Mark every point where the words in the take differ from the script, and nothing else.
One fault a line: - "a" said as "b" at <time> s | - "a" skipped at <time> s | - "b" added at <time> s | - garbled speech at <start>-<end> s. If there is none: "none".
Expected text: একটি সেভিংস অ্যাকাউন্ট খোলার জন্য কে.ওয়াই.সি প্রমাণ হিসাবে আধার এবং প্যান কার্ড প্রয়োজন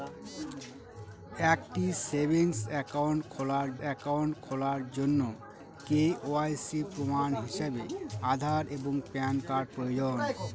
- "অ্যাকাউন্ট খোলার" added at 3.8 s